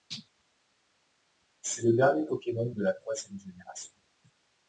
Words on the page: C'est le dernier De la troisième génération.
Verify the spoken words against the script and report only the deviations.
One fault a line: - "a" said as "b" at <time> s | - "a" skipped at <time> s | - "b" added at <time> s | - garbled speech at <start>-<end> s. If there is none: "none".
- "Pokémon" added at 2.2 s